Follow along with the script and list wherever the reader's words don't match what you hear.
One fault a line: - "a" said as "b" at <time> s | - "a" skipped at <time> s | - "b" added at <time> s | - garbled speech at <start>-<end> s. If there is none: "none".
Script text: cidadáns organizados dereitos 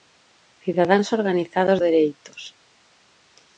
none